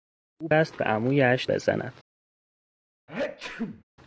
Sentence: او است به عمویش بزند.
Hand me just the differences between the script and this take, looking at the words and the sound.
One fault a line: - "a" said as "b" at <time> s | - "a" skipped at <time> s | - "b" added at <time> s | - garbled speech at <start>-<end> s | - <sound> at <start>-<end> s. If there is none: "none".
- sneeze at 3.1-3.8 s